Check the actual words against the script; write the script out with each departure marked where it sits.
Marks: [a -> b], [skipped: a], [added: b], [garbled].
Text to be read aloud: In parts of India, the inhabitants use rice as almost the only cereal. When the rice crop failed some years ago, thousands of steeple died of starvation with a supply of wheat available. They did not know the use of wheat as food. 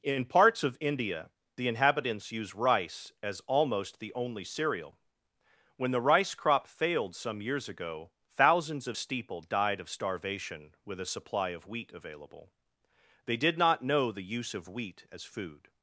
In parts of India, the inhabitants use rice as almost the only cereal. When the rice crop failed some years ago, thousands of steeple died of starvation with a supply of wheat available. They did not know the use of wheat as food.